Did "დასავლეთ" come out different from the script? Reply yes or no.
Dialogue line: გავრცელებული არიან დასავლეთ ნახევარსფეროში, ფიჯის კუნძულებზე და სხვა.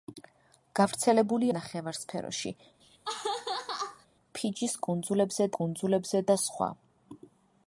yes